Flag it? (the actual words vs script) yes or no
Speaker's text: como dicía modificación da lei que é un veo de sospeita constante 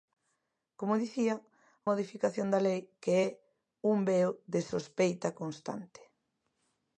no